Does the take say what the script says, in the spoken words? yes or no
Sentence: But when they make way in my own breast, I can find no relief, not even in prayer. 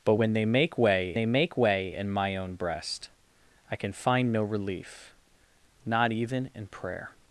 no